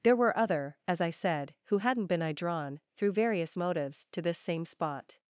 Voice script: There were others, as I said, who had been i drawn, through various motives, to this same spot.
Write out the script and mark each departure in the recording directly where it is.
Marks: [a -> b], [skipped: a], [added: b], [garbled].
There were [others, -> other] as I said, who [had -> hadn't] been i drawn, through various motives, to this same spot.